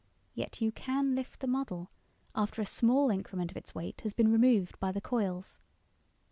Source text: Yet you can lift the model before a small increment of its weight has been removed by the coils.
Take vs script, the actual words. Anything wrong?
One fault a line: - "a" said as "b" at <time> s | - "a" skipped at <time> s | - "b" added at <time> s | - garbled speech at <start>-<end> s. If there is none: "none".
- "before" said as "after" at 2.3 s